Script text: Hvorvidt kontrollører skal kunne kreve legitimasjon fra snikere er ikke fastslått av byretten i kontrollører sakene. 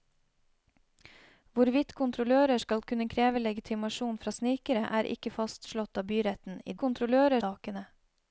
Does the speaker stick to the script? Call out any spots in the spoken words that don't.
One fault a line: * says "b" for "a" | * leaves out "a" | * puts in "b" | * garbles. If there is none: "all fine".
all fine